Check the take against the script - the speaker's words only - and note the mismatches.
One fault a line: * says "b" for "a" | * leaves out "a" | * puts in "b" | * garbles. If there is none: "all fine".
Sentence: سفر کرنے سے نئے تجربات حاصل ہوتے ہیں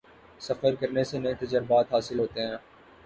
all fine